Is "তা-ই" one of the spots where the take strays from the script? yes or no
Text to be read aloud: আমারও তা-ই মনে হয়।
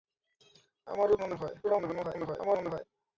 yes